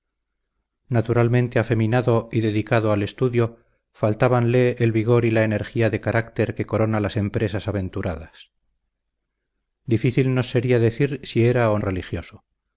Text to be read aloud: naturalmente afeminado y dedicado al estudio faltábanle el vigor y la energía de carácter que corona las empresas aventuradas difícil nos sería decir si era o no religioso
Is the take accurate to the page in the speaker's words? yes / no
no